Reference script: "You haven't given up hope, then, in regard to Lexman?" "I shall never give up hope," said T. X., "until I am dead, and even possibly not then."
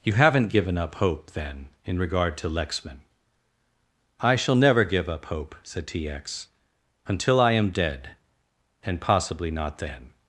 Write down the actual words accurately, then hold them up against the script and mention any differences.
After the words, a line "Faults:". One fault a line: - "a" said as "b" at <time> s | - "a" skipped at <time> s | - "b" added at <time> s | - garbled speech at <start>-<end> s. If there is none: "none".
"You haven't given up hope, then, in regard to Lexman?" "I shall never give up hope," said T. X., "until I am dead, and possibly not then."
Faults:
- "even" skipped at 9.0 s